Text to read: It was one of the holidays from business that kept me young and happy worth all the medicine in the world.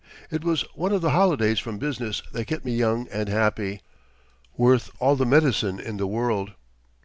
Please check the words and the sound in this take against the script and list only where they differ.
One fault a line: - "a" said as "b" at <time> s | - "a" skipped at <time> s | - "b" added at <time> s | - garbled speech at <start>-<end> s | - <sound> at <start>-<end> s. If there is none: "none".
none